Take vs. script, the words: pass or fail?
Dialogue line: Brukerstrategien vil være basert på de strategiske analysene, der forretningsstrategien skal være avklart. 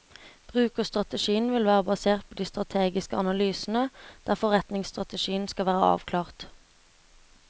pass